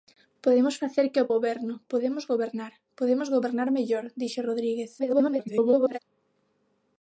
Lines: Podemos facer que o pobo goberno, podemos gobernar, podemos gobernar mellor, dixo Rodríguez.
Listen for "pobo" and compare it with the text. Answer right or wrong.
wrong